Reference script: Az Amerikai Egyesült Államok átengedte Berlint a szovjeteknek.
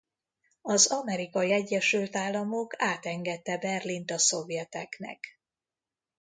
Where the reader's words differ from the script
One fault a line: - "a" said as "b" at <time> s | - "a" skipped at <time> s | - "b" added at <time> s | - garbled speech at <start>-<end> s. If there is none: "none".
none